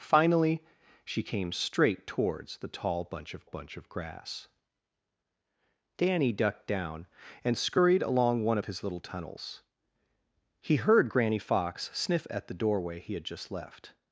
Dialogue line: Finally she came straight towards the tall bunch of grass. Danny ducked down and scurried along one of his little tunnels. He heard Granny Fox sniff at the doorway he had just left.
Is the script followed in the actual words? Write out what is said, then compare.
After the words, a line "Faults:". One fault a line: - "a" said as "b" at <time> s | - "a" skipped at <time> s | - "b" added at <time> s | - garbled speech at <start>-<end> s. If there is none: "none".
Finally she came straight towards the tall bunch of bunch of grass. Danny ducked down and scurried along one of his little tunnels. He heard Granny Fox sniff at the doorway he had just left.
Faults:
- "bunch of" added at 3.4 s